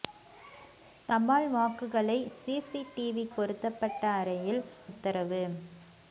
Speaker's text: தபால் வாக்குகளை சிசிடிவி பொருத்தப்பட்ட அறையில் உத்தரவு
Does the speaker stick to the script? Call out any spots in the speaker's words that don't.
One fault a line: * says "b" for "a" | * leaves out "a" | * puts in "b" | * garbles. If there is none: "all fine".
all fine